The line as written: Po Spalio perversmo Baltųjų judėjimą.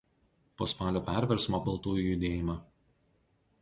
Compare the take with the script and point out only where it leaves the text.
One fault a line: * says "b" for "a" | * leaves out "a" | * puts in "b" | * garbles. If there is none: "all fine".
all fine